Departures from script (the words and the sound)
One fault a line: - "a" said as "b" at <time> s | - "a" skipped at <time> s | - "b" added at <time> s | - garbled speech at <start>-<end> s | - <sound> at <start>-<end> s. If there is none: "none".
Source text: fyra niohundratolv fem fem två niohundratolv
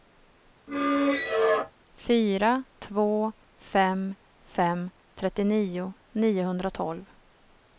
- squeak at 0.7-1.7 s
- "niohundratolv" said as "två" at 2.8 s
- "två" said as "trettionio" at 5.1 s